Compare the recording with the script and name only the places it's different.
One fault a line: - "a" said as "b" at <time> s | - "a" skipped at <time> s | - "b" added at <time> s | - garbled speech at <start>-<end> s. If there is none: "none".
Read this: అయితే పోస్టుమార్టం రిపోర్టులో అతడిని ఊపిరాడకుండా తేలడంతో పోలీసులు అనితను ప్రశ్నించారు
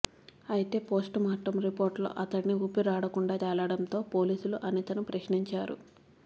none